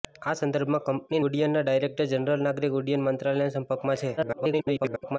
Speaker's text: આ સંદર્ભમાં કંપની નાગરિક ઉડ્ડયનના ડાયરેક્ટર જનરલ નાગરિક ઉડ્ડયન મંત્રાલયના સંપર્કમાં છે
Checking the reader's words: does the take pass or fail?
fail